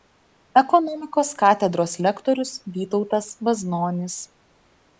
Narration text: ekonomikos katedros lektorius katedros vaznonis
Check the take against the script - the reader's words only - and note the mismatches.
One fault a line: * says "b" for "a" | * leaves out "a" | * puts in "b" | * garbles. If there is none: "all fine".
* says "vytautas" for "katedros"